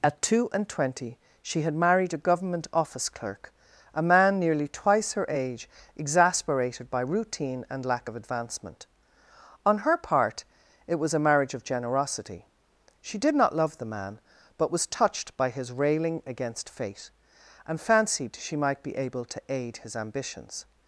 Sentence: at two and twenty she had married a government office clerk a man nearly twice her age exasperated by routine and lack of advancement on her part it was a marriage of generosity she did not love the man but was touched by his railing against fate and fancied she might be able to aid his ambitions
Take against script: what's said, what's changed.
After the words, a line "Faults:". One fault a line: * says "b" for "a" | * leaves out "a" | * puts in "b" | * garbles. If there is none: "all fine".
at two and twenty she had married a government office clerk a man nearly twice her age exasperated by routine and lack of advancement on her part it was a marriage of generosity she did not love the man but was touched by his railing against fate and fancied she might be able to aid his ambitions
Faults:
all fine